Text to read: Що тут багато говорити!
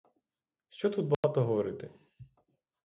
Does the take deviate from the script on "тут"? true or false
false